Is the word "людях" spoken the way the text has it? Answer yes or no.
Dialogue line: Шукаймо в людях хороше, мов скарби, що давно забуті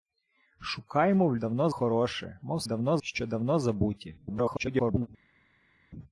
no